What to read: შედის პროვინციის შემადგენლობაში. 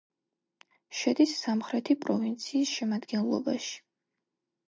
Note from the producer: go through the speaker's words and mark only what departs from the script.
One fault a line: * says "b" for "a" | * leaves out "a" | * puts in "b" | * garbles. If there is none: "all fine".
* puts in "სამხრეთი"